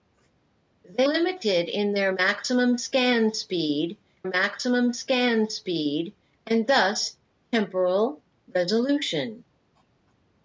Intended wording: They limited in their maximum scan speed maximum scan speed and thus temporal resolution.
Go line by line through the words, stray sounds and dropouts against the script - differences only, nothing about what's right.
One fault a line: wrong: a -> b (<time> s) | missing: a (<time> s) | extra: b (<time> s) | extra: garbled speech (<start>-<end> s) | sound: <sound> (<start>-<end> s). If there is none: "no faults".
no faults